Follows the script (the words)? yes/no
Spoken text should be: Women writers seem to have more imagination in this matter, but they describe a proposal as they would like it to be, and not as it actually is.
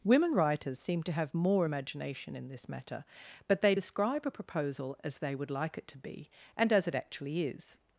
no